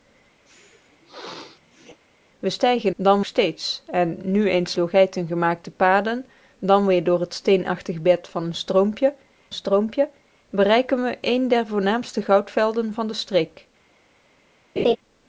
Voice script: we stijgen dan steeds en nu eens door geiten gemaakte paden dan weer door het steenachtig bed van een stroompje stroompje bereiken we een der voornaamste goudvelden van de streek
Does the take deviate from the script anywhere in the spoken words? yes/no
no